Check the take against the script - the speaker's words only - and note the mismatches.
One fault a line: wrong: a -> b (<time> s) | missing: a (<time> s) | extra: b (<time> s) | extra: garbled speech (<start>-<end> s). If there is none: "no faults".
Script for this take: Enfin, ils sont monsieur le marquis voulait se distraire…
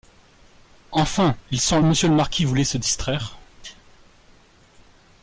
no faults